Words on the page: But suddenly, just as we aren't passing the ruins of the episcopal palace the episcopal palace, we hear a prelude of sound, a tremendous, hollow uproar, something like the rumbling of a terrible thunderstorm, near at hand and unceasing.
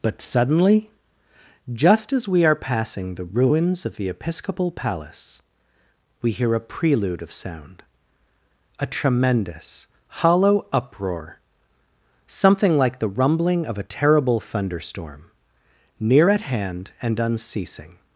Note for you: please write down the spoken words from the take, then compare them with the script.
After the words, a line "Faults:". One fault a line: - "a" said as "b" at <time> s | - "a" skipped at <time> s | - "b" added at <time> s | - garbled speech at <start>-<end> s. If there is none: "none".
But suddenly, just as we are passing the ruins of the episcopal palace, we hear a prelude of sound, a tremendous, hollow uproar, something like the rumbling of a terrible thunderstorm, near at hand and unceasing.
Faults:
- "aren't" said as "are" at 2.4 s
- "the episcopal palace" skipped at 5.4 s